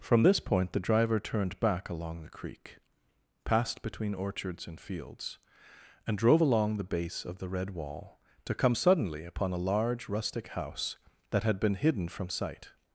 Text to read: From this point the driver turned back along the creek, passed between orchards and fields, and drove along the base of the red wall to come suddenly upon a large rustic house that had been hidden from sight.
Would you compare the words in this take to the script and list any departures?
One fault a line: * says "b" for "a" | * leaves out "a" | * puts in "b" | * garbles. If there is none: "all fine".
all fine